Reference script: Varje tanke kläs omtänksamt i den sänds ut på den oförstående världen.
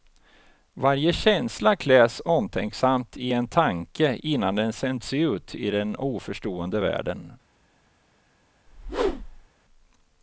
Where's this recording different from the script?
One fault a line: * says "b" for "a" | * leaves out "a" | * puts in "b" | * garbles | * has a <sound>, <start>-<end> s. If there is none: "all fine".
* says "känsla" for "tanke"
* puts in "en tanke innan"
* says "i" for "på"
* has a whoosh, 8.7-9.5 s